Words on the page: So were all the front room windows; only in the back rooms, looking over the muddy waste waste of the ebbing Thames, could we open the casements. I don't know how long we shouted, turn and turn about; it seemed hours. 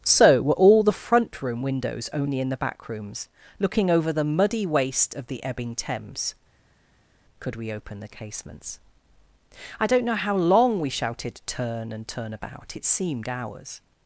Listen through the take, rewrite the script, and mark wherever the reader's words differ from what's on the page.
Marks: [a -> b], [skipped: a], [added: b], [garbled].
So were all the front room windows; only in the back rooms, looking over the muddy waste [skipped: waste] of the ebbing Thames, could we open the casements. I don't know how long we shouted, turn and turn about; it seemed hours.